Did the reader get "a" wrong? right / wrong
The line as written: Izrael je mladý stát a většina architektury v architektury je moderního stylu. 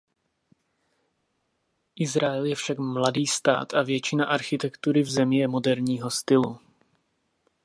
right